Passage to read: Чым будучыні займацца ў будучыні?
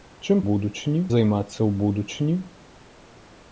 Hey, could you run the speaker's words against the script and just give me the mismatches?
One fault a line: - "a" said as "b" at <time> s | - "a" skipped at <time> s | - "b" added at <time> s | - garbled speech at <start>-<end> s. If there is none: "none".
none